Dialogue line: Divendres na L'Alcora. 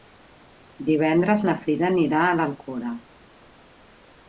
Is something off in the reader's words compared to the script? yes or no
yes